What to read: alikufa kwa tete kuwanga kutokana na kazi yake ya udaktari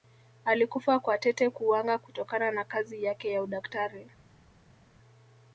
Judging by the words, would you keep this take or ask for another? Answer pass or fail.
pass